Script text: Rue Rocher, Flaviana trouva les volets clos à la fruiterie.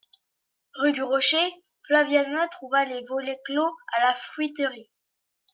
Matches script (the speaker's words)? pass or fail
fail